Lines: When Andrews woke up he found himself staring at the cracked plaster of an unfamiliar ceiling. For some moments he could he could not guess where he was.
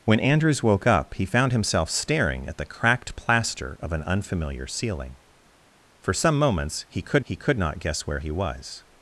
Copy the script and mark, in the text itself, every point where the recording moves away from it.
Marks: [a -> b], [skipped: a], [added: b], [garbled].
When Andrews woke up he found himself staring at the cracked plaster of an unfamiliar ceiling. For some moments he could he could not guess where he was.